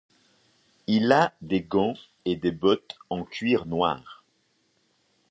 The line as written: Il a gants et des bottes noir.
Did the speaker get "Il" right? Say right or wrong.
right